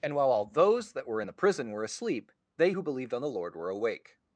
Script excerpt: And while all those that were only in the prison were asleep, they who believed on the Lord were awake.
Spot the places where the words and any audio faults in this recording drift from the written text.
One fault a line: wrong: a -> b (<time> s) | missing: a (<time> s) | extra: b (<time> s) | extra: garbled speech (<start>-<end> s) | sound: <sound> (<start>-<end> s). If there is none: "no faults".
missing: only (1.2 s)